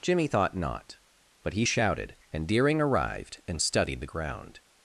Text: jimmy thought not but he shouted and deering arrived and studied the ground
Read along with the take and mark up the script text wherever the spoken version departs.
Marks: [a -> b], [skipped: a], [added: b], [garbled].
jimmy thought not but he shouted and deering arrived and studied the ground